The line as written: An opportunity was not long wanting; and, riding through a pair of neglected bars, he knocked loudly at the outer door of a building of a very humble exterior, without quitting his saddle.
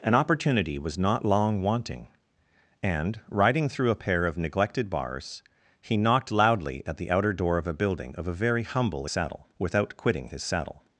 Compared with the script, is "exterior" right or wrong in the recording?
wrong